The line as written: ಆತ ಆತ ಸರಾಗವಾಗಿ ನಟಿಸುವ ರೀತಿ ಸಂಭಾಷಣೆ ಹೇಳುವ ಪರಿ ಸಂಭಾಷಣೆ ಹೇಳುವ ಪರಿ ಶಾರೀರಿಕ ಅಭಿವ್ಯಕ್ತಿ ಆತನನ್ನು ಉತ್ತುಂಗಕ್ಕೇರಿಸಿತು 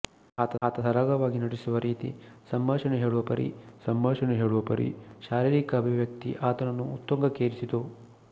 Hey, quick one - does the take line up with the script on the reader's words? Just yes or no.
yes